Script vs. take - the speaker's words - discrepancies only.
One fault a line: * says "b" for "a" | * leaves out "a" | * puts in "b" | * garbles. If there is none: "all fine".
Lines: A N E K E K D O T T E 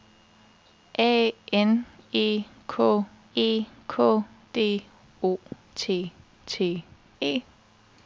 all fine